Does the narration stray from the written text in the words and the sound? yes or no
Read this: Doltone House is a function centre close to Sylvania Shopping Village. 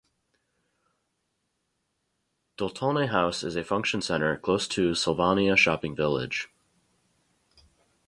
no